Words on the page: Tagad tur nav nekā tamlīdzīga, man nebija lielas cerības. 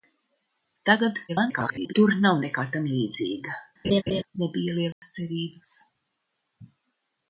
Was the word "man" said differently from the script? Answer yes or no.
yes